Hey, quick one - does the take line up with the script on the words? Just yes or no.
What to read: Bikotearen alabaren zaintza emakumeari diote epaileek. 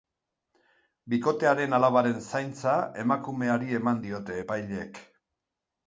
no